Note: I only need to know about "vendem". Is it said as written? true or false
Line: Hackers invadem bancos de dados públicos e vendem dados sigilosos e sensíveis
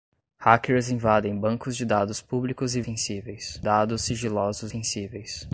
false